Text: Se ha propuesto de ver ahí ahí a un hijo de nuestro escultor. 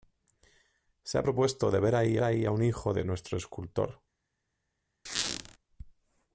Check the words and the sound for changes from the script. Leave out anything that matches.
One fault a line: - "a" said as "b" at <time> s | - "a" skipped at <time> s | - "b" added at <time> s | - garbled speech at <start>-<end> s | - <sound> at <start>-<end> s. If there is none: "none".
- squeak at 5.1-5.6 s